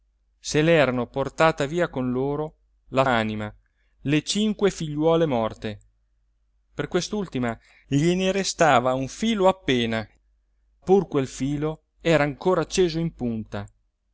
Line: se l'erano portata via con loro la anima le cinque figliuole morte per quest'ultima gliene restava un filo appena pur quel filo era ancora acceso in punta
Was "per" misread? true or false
false